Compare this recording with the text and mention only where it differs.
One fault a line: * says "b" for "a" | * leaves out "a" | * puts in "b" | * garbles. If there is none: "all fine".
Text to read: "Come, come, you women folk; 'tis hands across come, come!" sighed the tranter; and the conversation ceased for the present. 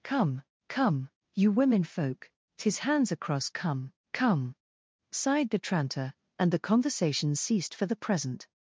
all fine